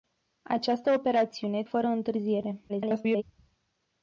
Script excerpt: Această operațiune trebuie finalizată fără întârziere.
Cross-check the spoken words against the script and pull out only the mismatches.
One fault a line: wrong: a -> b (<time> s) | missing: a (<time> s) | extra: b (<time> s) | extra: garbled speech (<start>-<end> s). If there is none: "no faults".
missing: trebuie finalizată (1.6 s)
extra: garbled speech (2.7-3.2 s)